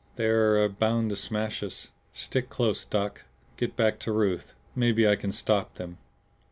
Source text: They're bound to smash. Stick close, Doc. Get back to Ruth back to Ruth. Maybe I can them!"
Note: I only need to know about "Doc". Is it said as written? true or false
true